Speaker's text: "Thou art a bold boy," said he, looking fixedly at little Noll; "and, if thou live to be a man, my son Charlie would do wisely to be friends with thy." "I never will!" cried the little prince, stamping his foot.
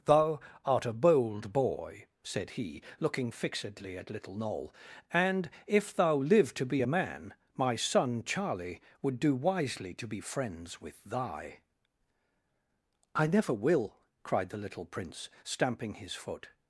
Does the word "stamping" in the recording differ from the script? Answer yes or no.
no